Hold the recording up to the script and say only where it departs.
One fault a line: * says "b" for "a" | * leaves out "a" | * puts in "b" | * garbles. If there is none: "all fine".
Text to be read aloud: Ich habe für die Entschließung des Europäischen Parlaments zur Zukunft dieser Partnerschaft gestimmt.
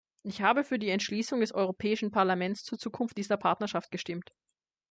all fine